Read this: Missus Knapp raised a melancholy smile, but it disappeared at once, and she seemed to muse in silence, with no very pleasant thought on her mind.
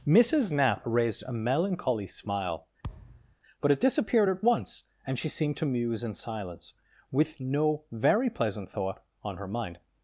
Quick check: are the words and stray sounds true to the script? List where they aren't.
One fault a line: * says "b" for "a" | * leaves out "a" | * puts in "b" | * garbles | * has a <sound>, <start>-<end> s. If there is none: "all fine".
* has a thud, 2.8-3.4 s